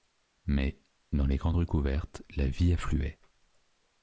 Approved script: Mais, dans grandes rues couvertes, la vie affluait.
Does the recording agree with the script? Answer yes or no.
no